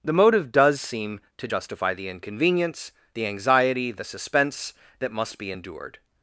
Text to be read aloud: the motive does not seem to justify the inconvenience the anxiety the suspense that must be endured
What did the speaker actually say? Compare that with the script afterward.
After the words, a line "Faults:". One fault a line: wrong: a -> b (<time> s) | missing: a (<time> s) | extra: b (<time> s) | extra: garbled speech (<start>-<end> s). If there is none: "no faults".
the motive does seem to justify the inconvenience the anxiety the suspense that must be endured
Faults:
missing: not (0.8 s)